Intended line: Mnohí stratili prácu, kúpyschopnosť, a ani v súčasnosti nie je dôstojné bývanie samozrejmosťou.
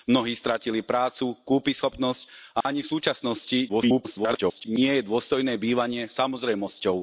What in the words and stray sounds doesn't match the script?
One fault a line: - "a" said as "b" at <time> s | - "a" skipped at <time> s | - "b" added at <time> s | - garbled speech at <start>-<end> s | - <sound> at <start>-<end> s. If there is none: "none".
- dropout at 2.6-2.6 s
- garbled speech at 3.7-4.7 s